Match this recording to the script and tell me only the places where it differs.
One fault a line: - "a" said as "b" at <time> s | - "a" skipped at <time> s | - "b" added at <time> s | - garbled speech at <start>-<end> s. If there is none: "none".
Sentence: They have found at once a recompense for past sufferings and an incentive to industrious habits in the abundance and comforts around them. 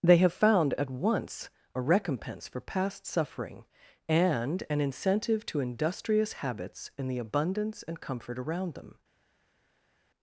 - "sufferings" said as "suffering" at 3.0 s
- "comforts" said as "comfort" at 8.0 s